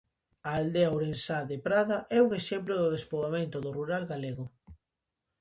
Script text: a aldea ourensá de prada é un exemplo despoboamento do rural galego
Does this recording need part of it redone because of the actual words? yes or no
yes